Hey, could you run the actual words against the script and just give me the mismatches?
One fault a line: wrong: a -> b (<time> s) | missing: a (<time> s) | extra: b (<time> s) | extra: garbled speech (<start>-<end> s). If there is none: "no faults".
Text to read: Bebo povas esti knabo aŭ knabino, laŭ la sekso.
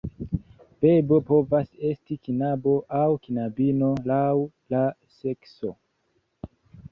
no faults